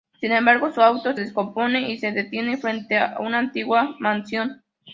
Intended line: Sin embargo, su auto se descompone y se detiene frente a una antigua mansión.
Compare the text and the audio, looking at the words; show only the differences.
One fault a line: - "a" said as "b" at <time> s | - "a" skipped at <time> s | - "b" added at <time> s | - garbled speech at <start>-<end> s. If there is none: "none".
- "se" skipped at 1.1 s